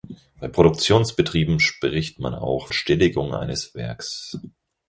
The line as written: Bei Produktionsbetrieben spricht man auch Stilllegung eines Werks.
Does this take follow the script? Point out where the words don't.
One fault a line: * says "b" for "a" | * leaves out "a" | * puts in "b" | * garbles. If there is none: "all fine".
all fine